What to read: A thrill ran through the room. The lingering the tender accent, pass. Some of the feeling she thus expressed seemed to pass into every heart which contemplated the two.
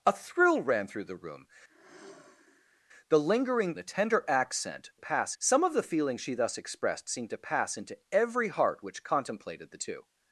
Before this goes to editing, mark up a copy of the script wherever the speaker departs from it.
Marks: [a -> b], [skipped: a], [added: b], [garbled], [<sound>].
A thrill ran through the room. [sigh] The lingering the tender accent, pass. Some of the feeling she thus expressed seemed to pass into every heart which contemplated the two.